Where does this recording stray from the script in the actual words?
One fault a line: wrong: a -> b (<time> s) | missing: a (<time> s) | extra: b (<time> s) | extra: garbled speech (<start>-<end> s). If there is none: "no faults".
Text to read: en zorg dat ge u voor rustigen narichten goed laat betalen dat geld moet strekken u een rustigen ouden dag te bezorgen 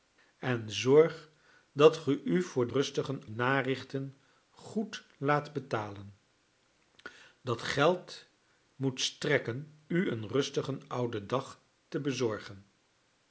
no faults